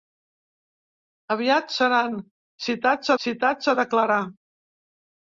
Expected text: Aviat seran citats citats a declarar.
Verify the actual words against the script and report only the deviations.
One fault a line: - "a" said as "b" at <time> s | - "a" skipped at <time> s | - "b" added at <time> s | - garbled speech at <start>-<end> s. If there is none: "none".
none